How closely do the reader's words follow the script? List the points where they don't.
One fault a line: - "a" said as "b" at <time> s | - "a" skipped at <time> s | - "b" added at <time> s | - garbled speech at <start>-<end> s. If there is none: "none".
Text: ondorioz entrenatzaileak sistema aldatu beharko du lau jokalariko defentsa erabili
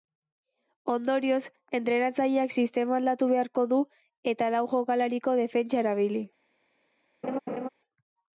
- "eta" added at 4.3 s